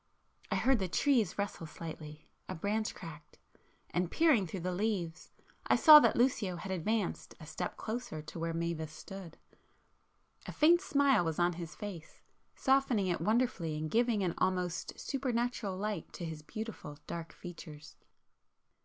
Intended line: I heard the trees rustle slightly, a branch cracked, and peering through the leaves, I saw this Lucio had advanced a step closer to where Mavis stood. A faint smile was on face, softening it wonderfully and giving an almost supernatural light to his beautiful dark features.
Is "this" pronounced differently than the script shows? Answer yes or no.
yes